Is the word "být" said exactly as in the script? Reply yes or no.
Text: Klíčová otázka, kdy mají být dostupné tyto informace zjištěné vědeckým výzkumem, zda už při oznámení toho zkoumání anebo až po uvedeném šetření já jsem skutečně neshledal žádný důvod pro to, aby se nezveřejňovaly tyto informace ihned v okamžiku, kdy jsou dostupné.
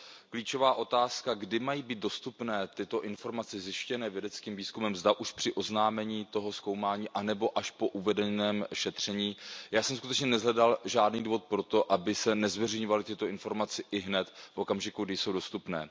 yes